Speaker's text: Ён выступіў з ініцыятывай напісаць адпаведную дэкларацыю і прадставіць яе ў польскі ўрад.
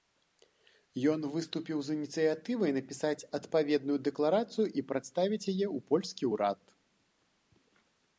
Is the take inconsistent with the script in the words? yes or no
no